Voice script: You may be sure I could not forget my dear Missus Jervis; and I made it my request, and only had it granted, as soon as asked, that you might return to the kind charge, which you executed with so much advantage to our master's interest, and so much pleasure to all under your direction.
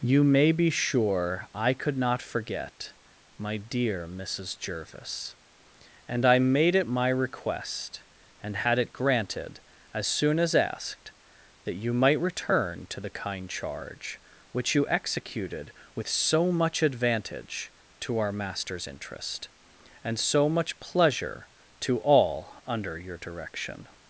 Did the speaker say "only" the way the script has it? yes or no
no